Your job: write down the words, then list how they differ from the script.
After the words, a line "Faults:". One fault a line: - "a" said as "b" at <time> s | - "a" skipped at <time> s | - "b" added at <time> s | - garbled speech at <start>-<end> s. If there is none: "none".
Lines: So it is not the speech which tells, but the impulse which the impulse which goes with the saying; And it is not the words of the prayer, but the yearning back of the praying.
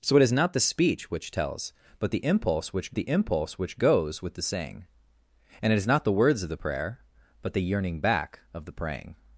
So it is not the speech which tells, but the impulse which the impulse which goes with the saying; And it is not the words of the prayer, but the yearning back of the praying.
Faults:
none